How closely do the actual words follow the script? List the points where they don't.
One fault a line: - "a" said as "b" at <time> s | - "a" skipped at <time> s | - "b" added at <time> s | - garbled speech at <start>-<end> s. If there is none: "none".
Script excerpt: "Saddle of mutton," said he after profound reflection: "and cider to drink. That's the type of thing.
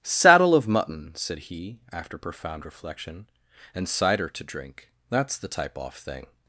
- "of" said as "off" at 5.8 s